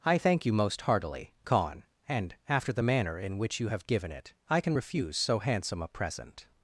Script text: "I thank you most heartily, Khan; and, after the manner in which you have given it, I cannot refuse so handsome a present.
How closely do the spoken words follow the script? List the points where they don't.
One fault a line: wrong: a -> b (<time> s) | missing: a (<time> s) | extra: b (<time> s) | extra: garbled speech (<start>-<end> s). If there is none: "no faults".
wrong: cannot -> can (4.6 s)